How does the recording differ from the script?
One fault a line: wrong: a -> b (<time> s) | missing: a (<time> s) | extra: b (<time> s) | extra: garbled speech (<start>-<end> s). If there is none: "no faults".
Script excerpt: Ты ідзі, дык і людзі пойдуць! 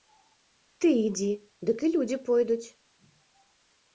no faults